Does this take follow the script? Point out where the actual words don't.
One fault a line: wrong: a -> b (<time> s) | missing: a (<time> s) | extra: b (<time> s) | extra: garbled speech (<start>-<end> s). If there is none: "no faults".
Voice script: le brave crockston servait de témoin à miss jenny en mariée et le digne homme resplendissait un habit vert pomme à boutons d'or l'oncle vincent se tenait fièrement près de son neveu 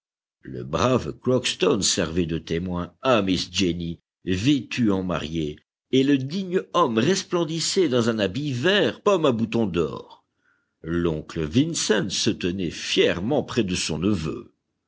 extra: vêtue (4.2 s)
extra: dans (7.9 s)